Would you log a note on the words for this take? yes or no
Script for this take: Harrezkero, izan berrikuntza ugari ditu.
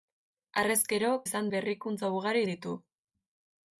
no